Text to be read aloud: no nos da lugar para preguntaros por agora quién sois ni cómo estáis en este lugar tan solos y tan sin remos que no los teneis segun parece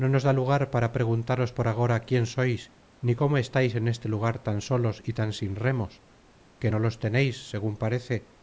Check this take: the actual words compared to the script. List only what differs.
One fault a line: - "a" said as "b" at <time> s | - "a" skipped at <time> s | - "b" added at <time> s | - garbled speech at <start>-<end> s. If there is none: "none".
none